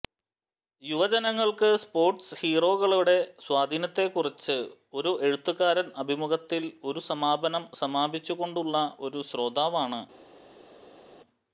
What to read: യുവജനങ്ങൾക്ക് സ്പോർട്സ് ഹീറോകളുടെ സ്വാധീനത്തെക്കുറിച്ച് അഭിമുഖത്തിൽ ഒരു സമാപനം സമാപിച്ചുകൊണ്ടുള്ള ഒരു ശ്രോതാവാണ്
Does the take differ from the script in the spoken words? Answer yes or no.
yes